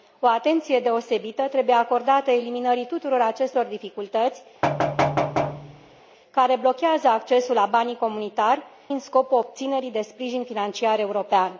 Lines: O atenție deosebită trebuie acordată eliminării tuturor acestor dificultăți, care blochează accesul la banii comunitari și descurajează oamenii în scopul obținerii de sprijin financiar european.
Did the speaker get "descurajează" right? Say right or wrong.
wrong